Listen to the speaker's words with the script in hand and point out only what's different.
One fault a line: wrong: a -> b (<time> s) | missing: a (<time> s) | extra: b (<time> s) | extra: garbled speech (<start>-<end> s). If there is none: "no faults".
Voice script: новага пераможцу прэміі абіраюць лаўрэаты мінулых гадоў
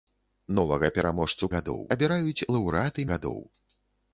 wrong: прэміі -> гадоў (1.5 s)
missing: мінулых (3.1 s)